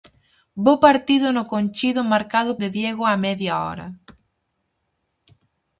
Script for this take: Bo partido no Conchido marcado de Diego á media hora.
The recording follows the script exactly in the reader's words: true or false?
true